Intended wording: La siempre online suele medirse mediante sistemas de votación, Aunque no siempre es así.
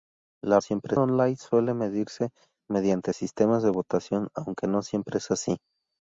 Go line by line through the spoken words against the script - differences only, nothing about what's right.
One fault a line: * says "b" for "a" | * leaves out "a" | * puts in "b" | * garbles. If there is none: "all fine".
all fine